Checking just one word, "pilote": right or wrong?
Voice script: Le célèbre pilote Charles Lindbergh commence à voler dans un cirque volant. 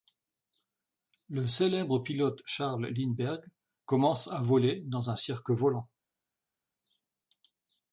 right